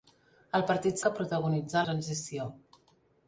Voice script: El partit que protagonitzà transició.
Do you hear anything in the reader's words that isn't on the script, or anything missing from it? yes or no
no